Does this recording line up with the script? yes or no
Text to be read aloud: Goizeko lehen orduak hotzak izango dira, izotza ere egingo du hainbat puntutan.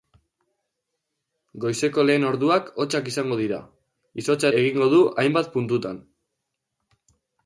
no